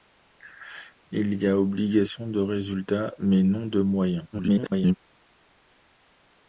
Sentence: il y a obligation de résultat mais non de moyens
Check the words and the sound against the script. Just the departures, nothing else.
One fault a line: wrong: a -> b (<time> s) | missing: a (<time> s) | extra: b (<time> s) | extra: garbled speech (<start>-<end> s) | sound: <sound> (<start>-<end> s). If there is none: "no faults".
extra: garbled speech (4.3-4.9 s)